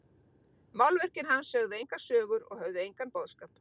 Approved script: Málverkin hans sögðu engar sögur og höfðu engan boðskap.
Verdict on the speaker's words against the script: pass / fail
pass